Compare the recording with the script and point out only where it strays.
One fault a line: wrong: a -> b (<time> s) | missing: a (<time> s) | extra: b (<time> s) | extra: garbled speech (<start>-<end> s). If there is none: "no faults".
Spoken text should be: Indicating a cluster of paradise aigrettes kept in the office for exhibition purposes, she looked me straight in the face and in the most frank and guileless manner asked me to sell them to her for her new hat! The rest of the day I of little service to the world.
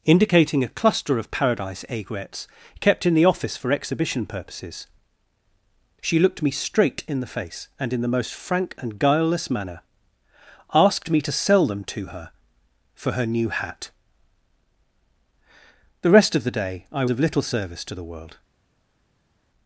no faults